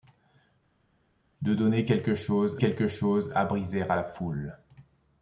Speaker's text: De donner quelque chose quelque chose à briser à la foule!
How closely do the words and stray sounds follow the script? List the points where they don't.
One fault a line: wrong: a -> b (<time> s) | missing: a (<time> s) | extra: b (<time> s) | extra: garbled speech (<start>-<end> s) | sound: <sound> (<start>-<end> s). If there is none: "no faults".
no faults